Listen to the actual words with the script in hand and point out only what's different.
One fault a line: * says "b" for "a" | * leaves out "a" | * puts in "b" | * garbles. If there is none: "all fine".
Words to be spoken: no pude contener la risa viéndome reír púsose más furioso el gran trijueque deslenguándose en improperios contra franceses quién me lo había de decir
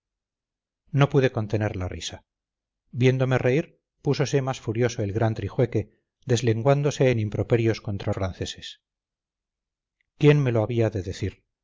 all fine